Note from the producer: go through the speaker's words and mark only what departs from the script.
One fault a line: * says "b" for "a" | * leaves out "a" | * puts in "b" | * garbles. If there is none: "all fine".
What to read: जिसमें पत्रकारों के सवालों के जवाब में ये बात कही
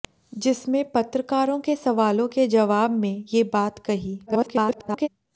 * garbles